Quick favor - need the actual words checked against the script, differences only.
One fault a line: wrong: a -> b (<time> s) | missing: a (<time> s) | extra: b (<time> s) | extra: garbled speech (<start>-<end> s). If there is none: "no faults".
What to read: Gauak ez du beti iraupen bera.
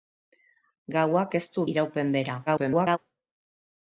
missing: beti (1.6 s)
extra: garbled speech (2.5-3.0 s)